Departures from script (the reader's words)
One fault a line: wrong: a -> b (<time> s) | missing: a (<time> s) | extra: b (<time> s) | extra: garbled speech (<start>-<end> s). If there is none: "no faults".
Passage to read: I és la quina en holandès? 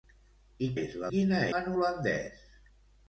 no faults